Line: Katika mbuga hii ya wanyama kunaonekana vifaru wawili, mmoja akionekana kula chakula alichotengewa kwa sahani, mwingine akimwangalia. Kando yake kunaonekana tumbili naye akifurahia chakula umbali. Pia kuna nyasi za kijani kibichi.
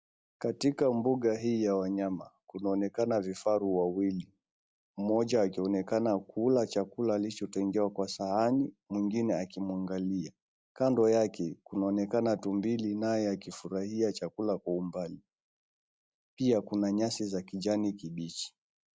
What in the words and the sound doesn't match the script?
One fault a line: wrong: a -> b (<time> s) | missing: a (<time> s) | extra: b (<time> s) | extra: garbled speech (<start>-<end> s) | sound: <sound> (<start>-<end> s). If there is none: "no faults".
extra: kwa (14.6 s)